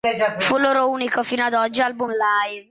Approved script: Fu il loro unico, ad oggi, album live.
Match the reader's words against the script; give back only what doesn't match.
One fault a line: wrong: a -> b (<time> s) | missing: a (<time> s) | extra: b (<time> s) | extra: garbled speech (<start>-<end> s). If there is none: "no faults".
extra: fino (1.2 s)